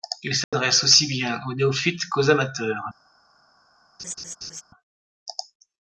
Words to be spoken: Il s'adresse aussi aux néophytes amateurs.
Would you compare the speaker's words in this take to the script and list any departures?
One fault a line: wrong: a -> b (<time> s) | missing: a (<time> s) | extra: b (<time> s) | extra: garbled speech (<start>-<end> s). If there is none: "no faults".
extra: bien (1.1 s)
extra: qu'aux (2.1 s)